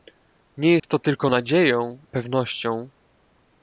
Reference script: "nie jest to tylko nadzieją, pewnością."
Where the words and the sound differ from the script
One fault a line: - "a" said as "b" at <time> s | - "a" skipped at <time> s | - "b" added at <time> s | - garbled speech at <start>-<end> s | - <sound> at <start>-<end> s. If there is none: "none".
- dropout at 0.8-0.8 s